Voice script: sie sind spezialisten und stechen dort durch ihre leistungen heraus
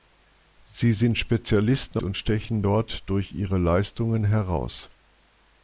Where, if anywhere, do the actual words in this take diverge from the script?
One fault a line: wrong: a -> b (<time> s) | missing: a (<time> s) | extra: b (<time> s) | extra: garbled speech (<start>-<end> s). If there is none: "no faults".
no faults